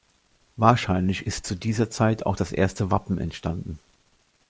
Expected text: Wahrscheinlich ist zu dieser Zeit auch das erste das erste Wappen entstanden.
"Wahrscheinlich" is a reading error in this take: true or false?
false